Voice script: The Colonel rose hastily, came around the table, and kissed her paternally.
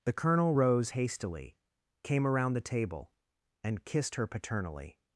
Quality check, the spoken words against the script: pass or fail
pass